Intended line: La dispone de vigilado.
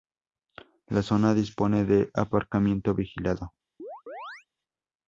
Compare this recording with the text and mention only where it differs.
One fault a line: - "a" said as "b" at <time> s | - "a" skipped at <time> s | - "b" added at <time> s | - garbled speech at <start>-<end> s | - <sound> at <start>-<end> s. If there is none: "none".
- "zona" added at 1.0 s
- "aparcamiento" added at 2.1 s
- chirp at 3.8-4.5 s